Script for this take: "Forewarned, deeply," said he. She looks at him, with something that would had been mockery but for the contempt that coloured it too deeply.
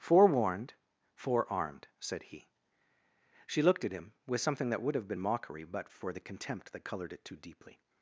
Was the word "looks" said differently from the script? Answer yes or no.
yes